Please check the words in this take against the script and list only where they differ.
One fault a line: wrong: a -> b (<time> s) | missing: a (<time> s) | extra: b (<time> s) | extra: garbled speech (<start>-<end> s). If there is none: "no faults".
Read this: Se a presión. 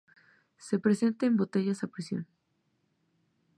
extra: presenta en botellas (0.8 s)